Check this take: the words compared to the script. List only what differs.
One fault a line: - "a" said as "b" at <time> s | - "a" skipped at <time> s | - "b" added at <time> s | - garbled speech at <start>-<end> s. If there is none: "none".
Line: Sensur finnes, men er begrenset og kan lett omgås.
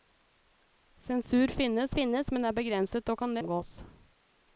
- "finnes" added at 2.0 s
- "lett" skipped at 3.4 s